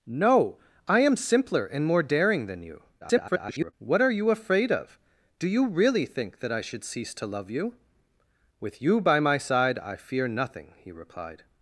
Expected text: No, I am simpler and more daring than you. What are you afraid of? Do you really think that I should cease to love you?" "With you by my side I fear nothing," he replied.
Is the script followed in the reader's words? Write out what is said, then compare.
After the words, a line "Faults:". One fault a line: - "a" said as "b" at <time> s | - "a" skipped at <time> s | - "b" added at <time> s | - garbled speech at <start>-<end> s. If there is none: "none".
No, I am simpler and more daring than you. [garbled] What are you afraid of? Do you really think that I should cease to love you?" "With you by my side I fear nothing," he replied.
Faults:
- garbled speech at 3.0-3.7 s